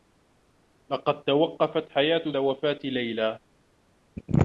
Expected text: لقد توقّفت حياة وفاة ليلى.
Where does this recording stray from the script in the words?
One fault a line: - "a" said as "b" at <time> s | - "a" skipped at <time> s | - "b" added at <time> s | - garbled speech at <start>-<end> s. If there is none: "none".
none